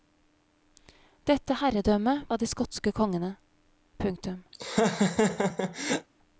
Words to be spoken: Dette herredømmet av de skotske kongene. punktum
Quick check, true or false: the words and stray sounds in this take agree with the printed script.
false